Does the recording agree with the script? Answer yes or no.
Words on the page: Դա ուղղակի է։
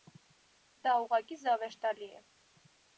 no